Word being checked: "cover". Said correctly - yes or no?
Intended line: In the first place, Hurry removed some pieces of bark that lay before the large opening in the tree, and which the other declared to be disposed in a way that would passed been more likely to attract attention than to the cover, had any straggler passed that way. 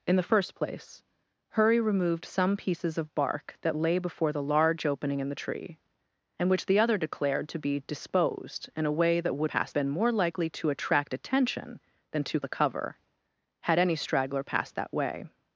yes